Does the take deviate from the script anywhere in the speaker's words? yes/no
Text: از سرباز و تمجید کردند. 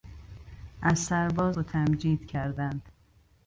no